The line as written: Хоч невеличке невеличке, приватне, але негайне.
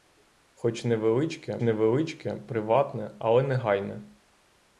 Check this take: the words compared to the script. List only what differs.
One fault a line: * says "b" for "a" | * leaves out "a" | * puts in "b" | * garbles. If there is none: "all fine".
all fine